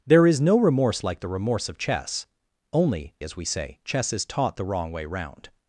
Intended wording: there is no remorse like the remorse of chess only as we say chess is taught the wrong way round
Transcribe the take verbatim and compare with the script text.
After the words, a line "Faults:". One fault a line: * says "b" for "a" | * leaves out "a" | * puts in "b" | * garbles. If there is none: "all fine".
there is no remorse like the remorse of chess only as we say chess is taught the wrong way round
Faults:
all fine